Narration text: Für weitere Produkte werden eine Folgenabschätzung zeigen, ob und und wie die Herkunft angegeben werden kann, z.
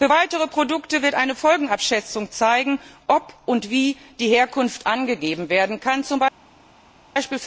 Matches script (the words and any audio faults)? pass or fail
fail